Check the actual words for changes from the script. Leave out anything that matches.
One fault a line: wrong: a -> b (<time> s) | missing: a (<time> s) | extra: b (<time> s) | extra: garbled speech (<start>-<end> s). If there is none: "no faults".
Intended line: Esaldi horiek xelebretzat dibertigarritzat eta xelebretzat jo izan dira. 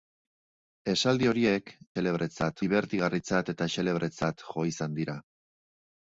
no faults